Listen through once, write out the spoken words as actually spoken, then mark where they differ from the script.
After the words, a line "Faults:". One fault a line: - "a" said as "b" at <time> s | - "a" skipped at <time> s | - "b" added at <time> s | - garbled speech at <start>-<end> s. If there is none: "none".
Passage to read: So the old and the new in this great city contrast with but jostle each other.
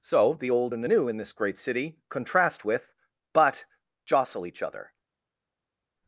So the old and the new in this great city contrast with but jostle each other.
Faults:
none